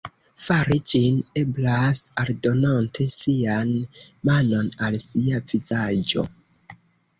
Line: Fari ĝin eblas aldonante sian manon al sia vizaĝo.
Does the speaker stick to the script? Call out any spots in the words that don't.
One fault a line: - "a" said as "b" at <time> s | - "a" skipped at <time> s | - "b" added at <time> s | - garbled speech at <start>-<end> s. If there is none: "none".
none